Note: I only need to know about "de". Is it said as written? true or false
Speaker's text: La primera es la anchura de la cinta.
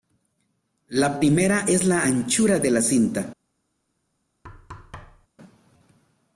true